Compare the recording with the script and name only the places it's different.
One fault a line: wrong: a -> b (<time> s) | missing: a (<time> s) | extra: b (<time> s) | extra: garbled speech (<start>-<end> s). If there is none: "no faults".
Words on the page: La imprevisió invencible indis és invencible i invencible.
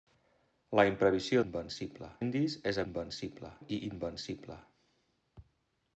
no faults